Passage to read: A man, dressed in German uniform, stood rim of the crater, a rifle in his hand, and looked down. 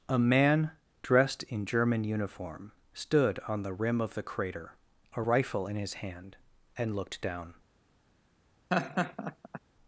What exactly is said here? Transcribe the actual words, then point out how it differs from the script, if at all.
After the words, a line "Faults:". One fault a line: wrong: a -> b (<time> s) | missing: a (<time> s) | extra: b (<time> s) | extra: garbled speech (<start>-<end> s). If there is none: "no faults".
A man, dressed in German uniform, stood on the rim of the crater, a rifle in his hand, and looked down.
Faults:
extra: on the (3.5 s)